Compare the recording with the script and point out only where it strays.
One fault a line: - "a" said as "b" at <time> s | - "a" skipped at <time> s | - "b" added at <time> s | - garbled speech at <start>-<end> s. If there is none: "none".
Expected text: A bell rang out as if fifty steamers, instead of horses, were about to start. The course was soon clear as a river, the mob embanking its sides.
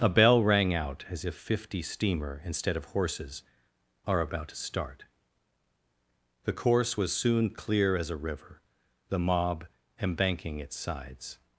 - "steamers" said as "steamer" at 1.8 s
- "were" said as "are" at 4.1 s